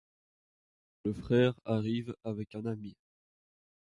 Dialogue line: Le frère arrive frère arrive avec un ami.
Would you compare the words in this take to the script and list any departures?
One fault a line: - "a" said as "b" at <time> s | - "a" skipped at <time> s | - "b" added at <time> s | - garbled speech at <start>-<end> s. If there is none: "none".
- "frère arrive" skipped at 2.1 s